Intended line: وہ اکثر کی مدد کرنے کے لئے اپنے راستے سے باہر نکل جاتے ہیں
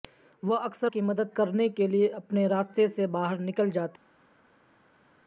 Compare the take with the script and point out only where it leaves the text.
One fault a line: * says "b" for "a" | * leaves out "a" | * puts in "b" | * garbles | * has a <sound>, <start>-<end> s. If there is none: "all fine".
all fine